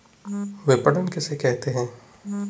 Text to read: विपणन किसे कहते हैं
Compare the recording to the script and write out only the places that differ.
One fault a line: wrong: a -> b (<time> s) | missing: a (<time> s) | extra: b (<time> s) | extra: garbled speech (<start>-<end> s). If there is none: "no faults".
no faults